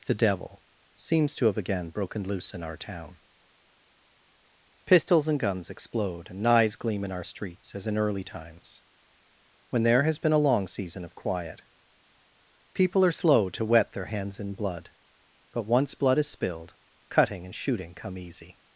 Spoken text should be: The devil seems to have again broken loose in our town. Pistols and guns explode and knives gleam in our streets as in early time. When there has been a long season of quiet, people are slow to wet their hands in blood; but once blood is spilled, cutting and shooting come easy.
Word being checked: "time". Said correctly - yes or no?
no